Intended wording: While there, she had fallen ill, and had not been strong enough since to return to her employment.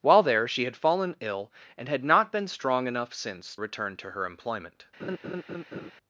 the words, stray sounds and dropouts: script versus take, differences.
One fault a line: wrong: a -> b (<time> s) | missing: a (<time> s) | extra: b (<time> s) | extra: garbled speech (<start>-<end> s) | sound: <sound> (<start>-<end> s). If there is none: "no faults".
missing: to (3.6 s)
sound: laugh (5.0-5.9 s)